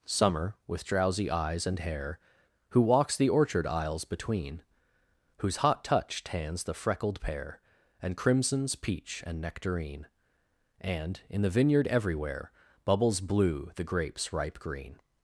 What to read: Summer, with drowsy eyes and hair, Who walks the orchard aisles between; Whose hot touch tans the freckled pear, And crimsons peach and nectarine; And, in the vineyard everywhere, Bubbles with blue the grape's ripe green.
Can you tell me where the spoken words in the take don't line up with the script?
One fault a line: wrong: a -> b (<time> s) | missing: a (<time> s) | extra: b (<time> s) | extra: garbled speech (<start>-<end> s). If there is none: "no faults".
missing: with (13.2 s)